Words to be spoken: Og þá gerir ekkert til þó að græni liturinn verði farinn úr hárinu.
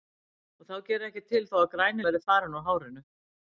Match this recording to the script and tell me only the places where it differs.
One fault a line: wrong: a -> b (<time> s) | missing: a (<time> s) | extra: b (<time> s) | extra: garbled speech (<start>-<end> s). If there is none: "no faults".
missing: liturinn (2.1 s)